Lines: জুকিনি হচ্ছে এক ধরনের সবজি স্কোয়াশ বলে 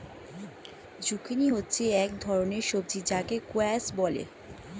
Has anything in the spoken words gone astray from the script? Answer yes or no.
yes